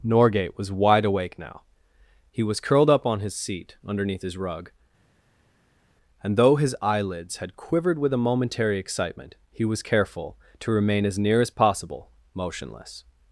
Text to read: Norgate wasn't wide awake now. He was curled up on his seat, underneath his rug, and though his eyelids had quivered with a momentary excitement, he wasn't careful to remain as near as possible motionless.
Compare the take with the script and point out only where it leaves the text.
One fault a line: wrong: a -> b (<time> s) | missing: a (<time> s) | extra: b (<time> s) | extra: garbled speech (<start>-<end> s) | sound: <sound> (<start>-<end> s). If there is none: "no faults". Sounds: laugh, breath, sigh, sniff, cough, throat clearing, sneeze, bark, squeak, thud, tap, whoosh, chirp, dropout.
wrong: wasn't -> was (0.6 s)
wrong: wasn't -> was (9.6 s)